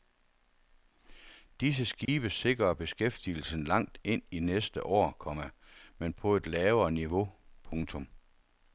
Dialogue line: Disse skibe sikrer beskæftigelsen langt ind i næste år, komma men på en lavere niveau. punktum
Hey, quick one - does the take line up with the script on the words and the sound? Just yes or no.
no